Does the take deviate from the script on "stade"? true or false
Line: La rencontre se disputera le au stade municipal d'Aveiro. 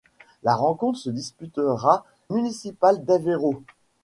true